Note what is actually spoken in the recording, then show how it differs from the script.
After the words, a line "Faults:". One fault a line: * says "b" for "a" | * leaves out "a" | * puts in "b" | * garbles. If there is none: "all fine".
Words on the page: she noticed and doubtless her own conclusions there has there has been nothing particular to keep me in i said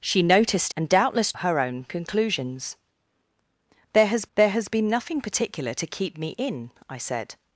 she noticed and doubtless her own conclusions there has there has been nothing particular to keep me in i said
Faults:
all fine